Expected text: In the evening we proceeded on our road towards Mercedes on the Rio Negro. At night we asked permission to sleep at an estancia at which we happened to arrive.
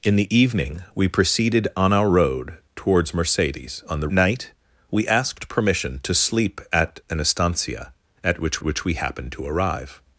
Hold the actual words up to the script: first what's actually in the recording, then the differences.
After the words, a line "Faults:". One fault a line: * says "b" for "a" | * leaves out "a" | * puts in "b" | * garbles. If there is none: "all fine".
In the evening we proceeded on our road towards Mercedes on the Night we asked permission to sleep at an estancia at which which we happened to arrive.
Faults:
* leaves out "Rio Negro At"
* puts in "which"